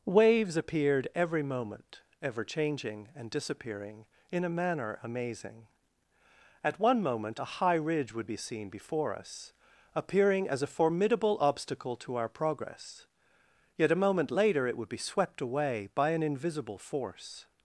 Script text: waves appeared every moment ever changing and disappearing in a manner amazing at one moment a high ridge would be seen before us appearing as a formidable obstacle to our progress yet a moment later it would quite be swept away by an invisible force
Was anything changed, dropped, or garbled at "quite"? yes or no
yes